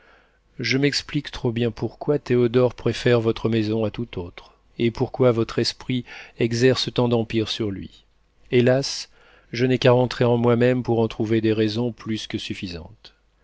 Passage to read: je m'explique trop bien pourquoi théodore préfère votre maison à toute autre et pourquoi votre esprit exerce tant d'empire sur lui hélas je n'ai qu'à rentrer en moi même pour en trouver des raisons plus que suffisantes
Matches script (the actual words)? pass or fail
pass